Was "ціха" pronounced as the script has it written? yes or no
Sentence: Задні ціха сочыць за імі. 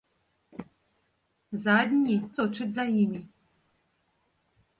no